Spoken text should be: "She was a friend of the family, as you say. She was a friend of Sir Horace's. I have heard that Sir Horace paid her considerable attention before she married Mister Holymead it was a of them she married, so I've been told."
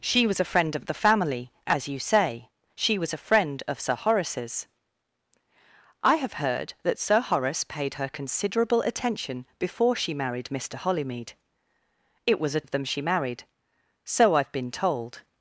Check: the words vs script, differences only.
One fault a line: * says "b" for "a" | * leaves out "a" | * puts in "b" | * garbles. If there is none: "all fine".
all fine